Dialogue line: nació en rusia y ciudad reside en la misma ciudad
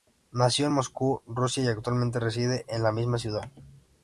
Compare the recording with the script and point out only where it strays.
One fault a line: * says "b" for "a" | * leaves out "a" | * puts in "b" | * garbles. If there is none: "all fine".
* puts in "moscú"
* says "actualmente" for "ciudad"